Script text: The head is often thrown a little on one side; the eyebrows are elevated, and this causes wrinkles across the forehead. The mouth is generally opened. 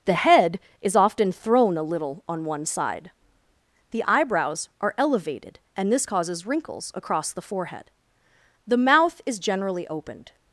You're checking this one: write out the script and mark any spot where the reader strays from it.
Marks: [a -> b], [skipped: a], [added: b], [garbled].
The head is often thrown a little on one side; the eyebrows are elevated, and this causes wrinkles across the forehead. The mouth is generally opened.